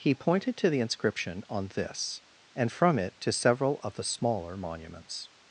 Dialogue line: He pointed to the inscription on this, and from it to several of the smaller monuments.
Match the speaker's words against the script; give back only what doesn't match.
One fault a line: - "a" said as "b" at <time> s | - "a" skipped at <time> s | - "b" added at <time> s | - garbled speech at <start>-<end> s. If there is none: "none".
none